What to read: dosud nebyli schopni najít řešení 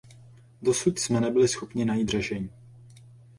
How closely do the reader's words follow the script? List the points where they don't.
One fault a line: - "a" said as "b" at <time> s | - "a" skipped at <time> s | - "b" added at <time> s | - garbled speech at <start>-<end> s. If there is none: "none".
- "jsme" added at 1.0 s